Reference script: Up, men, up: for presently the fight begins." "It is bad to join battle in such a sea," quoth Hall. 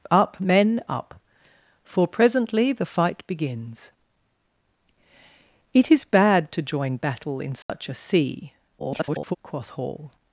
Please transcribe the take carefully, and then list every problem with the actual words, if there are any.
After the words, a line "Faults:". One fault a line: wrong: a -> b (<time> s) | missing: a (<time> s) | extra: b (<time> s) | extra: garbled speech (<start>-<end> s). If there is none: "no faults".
Up, men, up: for presently the fight begins." "It is bad to join battle in such a sea," [garbled] quoth Hall.
Faults:
extra: garbled speech (8.8-9.4 s)